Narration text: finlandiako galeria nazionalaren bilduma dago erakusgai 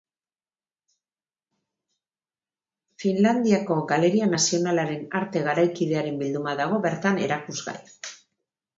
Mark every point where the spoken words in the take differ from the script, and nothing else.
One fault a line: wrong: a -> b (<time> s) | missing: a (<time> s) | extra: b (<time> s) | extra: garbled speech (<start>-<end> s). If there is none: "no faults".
extra: arte garaikidearen (5.2 s)
extra: bertan (6.9 s)